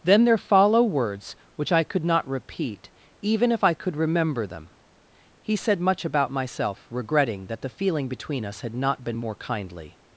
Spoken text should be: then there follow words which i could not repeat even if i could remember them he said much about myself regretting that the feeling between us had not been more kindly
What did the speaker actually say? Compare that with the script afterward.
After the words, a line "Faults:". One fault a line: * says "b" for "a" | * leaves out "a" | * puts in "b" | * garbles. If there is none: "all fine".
then there follow words which i could not repeat even if i could remember them he said much about myself regretting that the feeling between us had not been more kindly
Faults:
all fine